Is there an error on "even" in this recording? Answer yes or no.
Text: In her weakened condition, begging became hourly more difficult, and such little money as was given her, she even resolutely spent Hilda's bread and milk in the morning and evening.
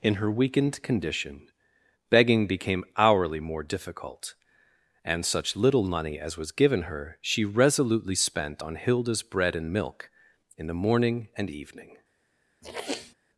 yes